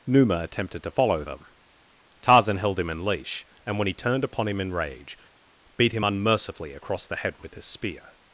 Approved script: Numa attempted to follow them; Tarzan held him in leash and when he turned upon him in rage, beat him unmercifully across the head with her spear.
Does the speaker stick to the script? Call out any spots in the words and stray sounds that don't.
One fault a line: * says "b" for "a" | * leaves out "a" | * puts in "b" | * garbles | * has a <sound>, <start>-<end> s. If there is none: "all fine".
* says "his" for "her"